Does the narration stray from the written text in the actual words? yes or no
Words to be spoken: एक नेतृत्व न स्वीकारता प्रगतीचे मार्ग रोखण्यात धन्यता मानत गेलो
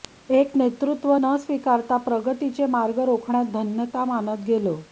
no